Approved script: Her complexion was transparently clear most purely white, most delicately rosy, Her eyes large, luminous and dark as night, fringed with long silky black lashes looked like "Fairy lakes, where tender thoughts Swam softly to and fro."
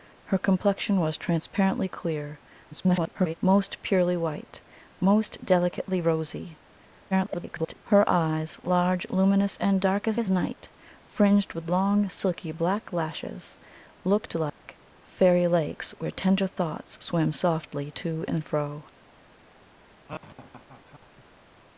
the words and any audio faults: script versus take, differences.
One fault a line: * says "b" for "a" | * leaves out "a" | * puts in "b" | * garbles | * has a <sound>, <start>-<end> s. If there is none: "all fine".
* garbles
* garbles
* puts in "as"
* has a dropout, 14.5-14.6 s
* has a laugh, 20.1-21.2 s